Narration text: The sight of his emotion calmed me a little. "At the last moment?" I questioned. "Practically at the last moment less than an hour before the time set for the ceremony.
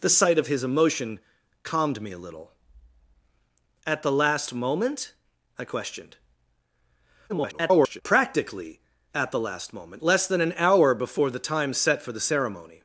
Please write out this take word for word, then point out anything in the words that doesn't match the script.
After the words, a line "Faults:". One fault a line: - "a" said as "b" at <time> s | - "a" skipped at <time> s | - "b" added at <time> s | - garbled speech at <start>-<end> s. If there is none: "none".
The sight of his emotion calmed me a little. "At the last moment?" I questioned. [garbled] "Practically at the last moment less than an hour before the time set for the ceremony.
Faults:
- garbled speech at 7.3-8.0 s